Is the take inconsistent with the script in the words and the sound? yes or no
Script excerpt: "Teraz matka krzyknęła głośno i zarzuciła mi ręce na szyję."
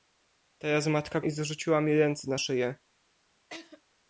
yes